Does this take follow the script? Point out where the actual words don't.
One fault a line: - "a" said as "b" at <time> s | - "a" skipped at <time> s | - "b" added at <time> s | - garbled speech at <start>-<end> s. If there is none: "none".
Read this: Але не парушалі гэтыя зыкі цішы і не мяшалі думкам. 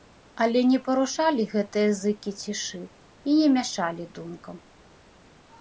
none